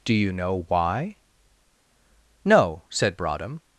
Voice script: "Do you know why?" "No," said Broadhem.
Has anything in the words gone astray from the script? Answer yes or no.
no